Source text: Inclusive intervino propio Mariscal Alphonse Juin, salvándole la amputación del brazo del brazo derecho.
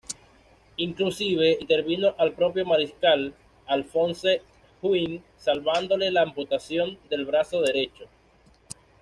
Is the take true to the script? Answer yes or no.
no